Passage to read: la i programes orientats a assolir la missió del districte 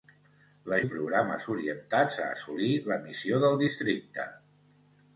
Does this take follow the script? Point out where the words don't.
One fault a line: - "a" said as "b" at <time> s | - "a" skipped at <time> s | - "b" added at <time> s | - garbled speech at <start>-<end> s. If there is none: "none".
none